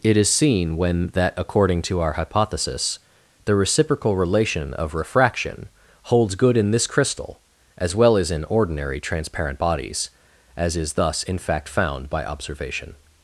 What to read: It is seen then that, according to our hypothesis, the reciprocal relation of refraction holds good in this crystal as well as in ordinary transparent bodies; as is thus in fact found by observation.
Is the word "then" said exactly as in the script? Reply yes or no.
no